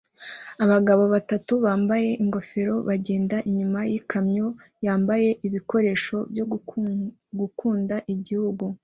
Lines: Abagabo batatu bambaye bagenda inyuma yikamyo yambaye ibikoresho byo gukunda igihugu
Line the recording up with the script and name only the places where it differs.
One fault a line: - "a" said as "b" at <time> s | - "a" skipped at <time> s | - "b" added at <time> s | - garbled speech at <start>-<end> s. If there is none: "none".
- "ingofero" added at 2.2 s